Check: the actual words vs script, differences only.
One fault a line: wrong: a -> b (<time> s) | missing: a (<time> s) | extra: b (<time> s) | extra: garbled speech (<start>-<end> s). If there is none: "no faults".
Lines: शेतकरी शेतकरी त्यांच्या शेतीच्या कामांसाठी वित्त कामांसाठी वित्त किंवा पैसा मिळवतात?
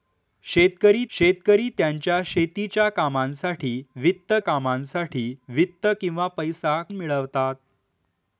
no faults